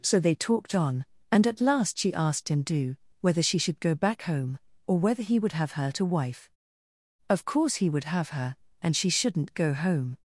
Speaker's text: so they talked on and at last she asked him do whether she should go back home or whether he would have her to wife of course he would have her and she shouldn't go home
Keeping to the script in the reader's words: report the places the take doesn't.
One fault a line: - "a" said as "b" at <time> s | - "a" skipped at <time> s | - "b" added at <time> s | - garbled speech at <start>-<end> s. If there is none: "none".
none